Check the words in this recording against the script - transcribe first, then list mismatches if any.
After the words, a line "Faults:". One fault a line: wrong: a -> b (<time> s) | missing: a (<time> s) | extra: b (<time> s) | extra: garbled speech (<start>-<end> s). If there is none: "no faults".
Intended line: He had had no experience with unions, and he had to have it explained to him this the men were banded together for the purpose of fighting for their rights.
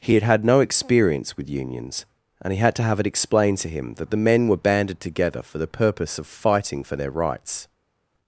He had had no experience with unions, and he had to have it explained to him that the men were banded together for the purpose of fighting for their rights.
Faults:
wrong: this -> that (4.0 s)